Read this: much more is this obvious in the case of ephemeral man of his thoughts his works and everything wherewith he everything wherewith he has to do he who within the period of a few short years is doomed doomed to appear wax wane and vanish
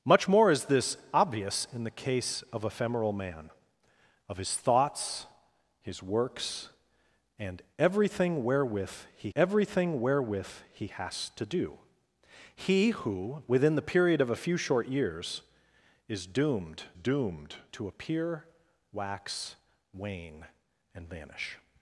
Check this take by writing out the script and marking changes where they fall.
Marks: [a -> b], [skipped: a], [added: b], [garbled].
much more is this obvious in the case of ephemeral man of his thoughts his works and everything wherewith he everything wherewith he has to do he who within the period of a few short years is doomed doomed to appear wax wane and vanish